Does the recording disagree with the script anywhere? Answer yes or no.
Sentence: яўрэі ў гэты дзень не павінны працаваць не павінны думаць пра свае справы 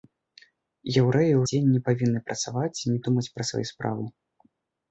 yes